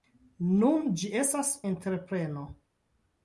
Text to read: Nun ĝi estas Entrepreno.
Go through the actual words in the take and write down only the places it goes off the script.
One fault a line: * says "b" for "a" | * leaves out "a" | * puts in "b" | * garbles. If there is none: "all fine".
all fine